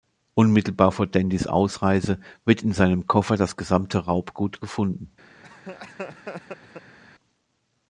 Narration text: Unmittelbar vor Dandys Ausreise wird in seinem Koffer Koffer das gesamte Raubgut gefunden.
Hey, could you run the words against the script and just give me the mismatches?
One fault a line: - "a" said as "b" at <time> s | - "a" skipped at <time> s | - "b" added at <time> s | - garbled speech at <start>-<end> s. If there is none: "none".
- "Koffer" skipped at 3.4 s